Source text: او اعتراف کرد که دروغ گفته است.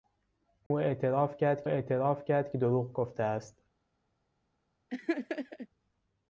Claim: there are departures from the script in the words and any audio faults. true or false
true